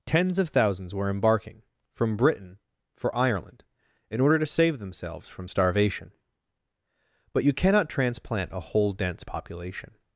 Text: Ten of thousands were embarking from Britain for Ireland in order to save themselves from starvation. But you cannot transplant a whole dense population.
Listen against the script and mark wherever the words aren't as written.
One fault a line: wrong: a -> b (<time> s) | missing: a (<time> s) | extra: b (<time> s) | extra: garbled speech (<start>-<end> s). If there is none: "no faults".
wrong: Ten -> Tens (0.1 s)